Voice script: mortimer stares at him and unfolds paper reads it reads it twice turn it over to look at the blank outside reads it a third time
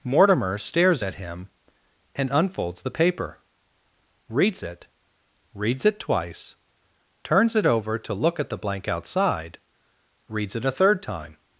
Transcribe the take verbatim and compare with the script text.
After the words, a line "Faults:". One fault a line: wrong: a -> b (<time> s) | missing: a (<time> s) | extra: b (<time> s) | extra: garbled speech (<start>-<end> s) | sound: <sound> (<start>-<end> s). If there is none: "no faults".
mortimer stares at him and unfolds the paper reads it reads it twice turns it over to look at the blank outside reads it a third time
Faults:
extra: the (2.8 s)
wrong: turn -> turns (7.2 s)